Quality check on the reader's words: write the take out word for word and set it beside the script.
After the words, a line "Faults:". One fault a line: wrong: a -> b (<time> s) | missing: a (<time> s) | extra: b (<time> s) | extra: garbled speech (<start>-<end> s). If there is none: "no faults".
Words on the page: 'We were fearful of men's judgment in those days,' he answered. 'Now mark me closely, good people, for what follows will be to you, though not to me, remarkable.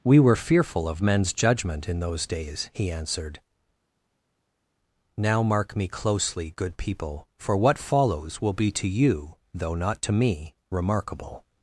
'We were fearful of men's judgment in those days,' he answered. 'Now mark me closely, good people, for what follows will be to you, though not to me, remarkable.
Faults:
no faults